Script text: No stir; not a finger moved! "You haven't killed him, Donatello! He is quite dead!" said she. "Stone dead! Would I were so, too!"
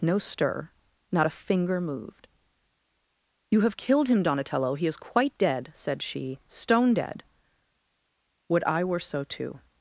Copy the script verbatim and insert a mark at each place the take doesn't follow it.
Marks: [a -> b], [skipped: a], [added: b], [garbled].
No stir; not a finger moved! "You [haven't -> have] killed him, Donatello! He is quite dead!" said she. "Stone dead! Would I were so, too!"